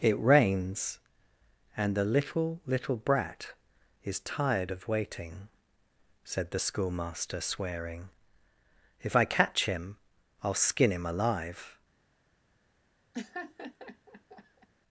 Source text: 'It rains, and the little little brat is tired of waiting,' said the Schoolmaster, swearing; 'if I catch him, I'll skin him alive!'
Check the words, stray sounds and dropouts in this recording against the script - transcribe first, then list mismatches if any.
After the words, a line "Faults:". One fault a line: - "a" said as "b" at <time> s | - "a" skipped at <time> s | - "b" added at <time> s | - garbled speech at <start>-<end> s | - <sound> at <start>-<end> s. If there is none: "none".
'It rains, and the little little brat is tired of waiting,' said the Schoolmaster, swearing; 'if I catch him, I'll skin him alive!'
Faults:
- laugh at 13.1-14.7 s